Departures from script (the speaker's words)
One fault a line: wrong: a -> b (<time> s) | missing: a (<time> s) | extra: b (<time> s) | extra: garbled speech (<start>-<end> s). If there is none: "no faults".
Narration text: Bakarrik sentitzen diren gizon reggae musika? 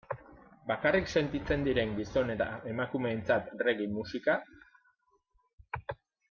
extra: eta emakumeentzat (2.4 s)